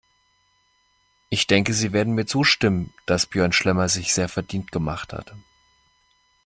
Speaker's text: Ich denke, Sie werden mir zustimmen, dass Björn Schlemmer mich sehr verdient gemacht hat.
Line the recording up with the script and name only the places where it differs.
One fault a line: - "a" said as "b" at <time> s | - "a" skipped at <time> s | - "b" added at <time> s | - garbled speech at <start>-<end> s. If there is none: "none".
- "mich" said as "sich" at 3.9 s